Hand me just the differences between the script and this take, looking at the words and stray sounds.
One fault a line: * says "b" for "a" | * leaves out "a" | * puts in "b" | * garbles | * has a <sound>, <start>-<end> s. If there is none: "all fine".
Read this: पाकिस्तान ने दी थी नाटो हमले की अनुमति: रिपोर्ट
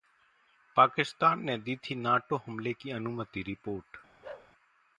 * has a bark, 4.2-4.5 s